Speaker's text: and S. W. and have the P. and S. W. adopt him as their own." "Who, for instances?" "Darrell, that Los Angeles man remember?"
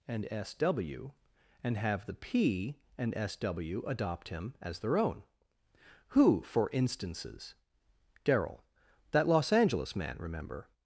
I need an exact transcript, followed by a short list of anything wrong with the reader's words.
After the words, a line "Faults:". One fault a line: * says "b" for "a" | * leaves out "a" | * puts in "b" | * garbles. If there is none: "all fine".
and S. W. and have the P. and S. W. adopt him as their own." "Who, for instances?" "Darrell, that Los Angeles man remember?"
Faults:
all fine